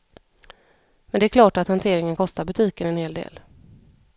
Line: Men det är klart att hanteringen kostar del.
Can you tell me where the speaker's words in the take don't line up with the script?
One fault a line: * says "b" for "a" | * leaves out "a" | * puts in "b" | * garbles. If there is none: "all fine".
* puts in "butiken en hel"